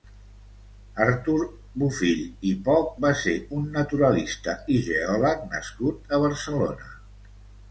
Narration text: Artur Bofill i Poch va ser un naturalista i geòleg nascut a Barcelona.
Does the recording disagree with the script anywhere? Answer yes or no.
no